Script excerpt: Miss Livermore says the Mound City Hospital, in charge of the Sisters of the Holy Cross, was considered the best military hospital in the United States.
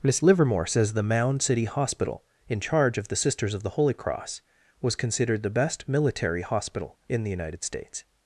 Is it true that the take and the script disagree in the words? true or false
false